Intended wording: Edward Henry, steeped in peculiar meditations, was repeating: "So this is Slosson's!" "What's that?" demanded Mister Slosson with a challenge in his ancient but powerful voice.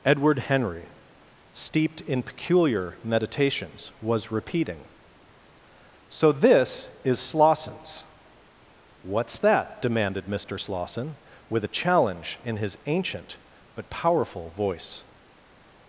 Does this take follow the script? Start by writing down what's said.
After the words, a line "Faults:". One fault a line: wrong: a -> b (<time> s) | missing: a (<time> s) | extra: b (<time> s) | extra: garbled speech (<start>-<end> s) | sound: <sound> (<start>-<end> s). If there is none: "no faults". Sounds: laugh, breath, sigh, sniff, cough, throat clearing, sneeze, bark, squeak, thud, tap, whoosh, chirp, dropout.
Edward Henry, steeped in peculiar meditations, was repeating: "So this is Slosson's!" "What's that?" demanded Mister Slosson with a challenge in his ancient but powerful voice.
Faults:
no faults